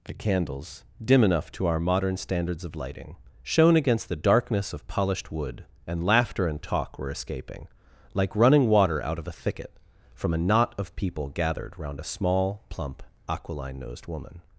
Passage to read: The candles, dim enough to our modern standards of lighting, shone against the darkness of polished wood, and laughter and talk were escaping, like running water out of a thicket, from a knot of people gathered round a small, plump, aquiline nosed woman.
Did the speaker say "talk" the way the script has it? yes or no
yes